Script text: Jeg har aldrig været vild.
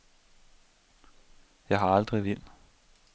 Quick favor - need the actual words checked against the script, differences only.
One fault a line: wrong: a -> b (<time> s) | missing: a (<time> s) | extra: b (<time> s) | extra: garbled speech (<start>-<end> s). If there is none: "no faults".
missing: været (2.2 s)